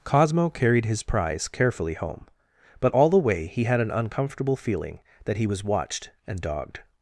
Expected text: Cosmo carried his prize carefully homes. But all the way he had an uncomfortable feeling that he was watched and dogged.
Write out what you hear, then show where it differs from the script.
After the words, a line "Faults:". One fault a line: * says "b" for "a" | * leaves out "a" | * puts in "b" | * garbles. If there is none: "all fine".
Cosmo carried his prize carefully home. But all the way he had an uncomfortable feeling that he was watched and dogged.
Faults:
* says "home" for "homes"